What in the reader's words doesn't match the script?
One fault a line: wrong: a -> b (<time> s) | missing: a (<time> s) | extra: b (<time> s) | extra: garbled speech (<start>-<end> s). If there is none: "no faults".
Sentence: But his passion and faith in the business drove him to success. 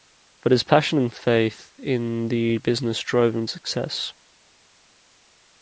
no faults